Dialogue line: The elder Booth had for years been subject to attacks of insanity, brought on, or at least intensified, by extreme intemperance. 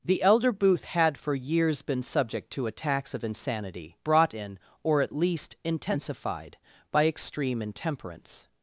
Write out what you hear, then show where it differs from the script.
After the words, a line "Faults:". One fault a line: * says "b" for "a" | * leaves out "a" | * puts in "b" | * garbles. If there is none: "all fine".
The elder Booth had for years been subject to attacks of insanity, brought in, or at least intensified, by extreme intemperance.
Faults:
* says "in" for "on"